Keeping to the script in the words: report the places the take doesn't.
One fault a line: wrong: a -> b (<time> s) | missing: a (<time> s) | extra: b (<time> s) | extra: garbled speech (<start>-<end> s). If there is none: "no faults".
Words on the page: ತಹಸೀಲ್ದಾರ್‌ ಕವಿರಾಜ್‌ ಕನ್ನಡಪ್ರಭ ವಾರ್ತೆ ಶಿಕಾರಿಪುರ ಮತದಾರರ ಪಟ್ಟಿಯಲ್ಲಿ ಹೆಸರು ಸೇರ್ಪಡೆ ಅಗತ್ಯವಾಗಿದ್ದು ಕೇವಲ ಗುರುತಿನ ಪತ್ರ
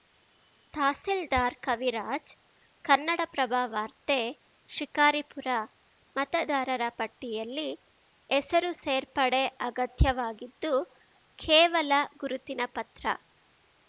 no faults